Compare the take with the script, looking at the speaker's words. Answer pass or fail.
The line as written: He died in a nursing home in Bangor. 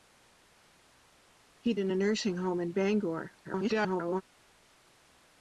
fail